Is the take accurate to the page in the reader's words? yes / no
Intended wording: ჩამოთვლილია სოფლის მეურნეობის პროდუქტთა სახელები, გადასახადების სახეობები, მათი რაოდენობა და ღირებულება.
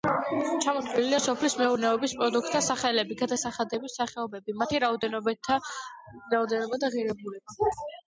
yes